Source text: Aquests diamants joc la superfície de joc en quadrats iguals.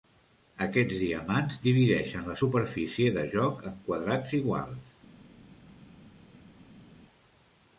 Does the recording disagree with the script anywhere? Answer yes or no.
yes